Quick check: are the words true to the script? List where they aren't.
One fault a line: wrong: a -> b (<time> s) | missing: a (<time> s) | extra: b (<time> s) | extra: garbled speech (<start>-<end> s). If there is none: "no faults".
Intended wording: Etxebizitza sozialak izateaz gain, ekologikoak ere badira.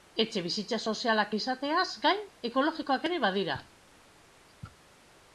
no faults